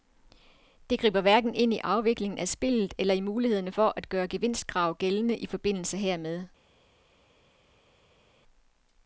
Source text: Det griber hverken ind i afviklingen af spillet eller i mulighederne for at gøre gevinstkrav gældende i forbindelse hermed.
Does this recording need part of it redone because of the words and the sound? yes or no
no